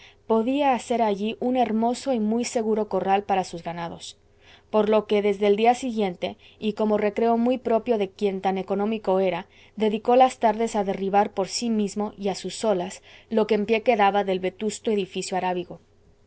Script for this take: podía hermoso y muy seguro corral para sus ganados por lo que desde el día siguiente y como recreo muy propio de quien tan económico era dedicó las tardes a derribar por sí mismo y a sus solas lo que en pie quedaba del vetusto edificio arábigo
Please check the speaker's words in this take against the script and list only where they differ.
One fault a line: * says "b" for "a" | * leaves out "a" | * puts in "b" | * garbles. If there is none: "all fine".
* puts in "hacer allí un"